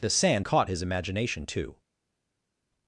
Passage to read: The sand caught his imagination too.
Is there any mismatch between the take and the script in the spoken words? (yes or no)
no